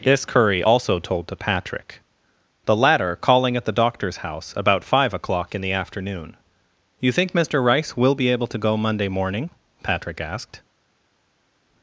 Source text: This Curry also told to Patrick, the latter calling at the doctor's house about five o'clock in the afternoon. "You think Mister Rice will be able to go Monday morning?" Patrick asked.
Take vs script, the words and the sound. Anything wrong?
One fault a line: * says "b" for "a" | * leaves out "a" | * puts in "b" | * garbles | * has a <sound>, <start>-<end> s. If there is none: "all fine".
all fine